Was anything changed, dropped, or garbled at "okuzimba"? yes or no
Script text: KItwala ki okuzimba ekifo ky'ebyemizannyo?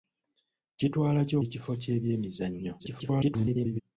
yes